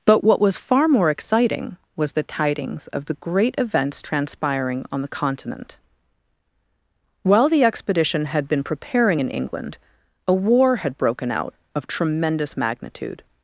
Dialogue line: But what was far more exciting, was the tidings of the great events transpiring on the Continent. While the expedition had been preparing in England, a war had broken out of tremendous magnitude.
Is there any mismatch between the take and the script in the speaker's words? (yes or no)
no